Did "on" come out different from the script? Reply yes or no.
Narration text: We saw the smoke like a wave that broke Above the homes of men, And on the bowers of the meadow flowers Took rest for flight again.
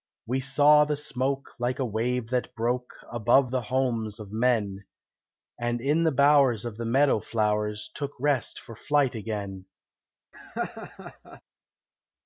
yes